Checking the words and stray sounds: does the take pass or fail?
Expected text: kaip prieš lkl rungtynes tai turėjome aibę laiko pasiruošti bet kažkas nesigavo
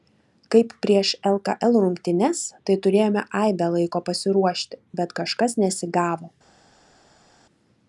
pass